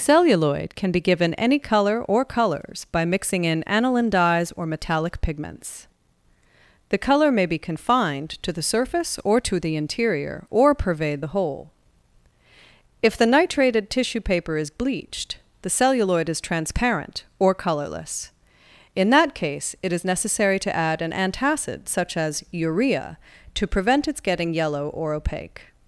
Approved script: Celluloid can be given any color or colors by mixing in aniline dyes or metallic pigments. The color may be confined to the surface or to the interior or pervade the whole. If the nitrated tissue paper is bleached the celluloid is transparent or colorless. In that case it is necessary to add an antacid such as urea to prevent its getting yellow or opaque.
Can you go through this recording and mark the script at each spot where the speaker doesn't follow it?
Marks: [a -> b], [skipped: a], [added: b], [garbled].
Celluloid can be given any color or colors by mixing in aniline dyes or metallic pigments. The color may be confined to the surface or to the interior or pervade the whole. If the nitrated tissue paper is bleached the celluloid is transparent or colorless. In that case it is necessary to add an antacid such as urea to prevent its getting yellow or opaque.